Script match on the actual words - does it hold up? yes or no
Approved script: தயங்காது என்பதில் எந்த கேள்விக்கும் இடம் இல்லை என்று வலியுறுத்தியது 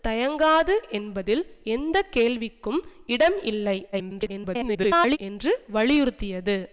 no